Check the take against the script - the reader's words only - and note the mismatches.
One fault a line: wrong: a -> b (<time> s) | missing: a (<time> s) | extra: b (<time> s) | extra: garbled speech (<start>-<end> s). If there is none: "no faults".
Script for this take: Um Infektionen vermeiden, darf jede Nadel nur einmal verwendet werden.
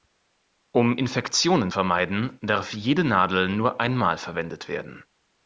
no faults